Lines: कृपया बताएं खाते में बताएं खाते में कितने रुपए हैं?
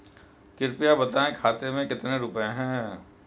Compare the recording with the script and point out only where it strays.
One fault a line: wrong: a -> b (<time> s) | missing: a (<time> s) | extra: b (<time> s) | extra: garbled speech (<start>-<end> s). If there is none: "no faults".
missing: बताएं खाते में (1.9 s)